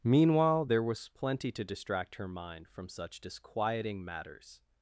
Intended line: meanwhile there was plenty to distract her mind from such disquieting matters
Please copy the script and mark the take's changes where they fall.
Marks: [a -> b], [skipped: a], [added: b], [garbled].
meanwhile there was plenty to distract her mind from such disquieting matters